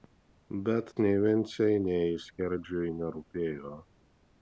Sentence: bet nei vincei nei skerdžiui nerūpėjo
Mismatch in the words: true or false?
false